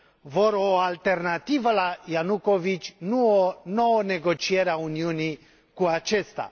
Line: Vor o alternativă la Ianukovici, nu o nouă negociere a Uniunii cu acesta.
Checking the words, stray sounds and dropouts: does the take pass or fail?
pass